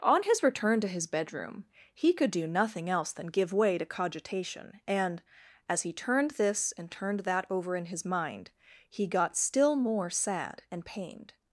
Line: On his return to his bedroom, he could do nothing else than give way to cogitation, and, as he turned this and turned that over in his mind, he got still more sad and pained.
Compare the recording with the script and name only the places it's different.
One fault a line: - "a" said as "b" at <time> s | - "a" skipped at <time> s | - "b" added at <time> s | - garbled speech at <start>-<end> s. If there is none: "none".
none